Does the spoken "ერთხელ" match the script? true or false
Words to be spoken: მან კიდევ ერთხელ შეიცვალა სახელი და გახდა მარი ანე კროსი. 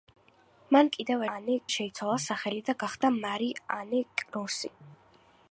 false